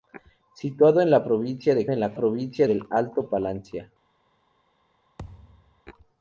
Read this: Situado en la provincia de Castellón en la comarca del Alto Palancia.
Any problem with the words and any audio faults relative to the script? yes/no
yes